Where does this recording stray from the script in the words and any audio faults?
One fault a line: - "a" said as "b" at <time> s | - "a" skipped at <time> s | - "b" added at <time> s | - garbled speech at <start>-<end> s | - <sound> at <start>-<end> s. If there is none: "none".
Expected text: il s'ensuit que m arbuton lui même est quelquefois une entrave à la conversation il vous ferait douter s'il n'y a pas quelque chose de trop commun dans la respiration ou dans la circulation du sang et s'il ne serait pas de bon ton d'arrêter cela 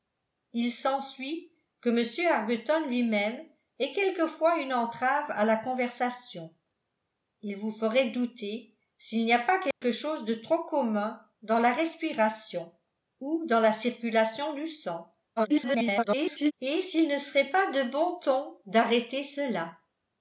- dropout at 9.7-9.8 s
- garbled speech at 15.4-16.5 s